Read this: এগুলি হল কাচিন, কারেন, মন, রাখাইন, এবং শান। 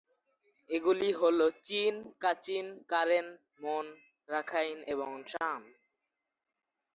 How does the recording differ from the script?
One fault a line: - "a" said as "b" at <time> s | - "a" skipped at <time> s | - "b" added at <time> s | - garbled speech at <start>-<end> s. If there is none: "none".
- "চিন" added at 1.7 s